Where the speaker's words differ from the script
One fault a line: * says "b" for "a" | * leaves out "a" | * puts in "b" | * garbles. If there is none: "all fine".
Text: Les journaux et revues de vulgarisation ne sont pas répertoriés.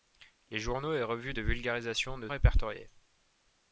* leaves out "sont pas"